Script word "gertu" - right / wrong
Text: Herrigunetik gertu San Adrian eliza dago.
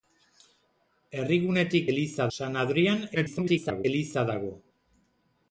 wrong